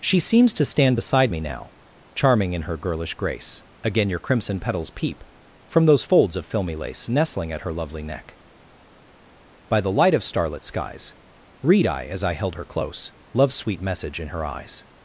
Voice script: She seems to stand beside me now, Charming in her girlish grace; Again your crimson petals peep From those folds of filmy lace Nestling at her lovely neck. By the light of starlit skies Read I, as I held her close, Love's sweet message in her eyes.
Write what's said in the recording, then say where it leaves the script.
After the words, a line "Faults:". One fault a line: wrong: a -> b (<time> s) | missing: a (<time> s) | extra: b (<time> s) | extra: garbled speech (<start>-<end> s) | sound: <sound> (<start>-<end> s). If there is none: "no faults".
She seems to stand beside me now, Charming in her girlish grace; Again your crimson petals peep From those folds of filmy lace Nestling at her lovely neck. By the light of starlit skies Read I, as I held her close, Love's sweet message in her eyes.
Faults:
no faults